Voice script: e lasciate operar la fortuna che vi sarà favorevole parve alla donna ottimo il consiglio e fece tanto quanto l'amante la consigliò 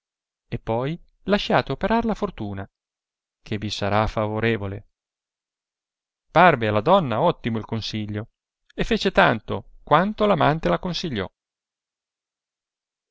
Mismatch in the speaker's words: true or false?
true